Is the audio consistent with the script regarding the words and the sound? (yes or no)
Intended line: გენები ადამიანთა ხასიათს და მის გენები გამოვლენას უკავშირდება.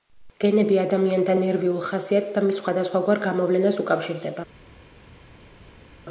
no